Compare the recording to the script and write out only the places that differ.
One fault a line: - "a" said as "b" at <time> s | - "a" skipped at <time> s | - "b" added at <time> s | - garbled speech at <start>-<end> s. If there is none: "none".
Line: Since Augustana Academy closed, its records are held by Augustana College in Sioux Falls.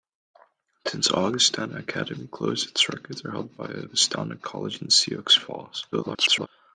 - garbled speech at 5.9-6.5 s